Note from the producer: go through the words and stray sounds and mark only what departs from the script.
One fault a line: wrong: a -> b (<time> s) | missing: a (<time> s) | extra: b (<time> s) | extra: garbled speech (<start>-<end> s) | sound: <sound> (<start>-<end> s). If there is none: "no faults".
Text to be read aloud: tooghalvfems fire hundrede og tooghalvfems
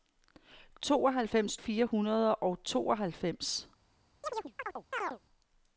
sound: chirp (4.2-5.2 s)